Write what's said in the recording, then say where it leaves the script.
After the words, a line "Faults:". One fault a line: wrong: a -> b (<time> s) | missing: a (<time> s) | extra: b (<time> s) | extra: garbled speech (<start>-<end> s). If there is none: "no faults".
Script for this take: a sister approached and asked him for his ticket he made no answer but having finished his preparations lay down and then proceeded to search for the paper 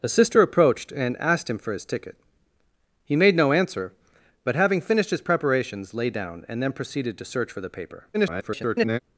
a sister approached and asked him for his ticket he made no answer but having finished his preparations lay down and then proceeded to search for the paper [garbled]
Faults:
extra: garbled speech (8.1-9.0 s)